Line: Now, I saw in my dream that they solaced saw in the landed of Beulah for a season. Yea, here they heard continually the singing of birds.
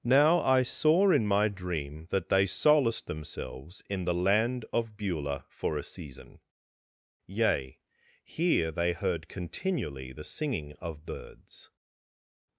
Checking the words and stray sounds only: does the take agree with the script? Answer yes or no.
no